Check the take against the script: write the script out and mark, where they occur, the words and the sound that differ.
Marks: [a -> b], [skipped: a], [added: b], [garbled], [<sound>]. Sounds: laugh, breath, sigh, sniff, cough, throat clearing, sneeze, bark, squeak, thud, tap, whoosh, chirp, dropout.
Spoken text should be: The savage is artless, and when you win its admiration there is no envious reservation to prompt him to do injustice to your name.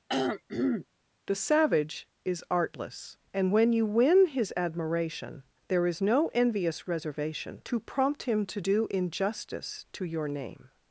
[throat clearing] The savage is artless, and when you win [its -> his] admiration there is no envious reservation to prompt him to do injustice to your name.